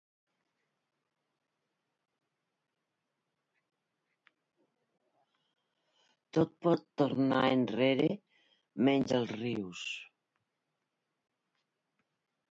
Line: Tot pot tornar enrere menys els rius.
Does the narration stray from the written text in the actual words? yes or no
no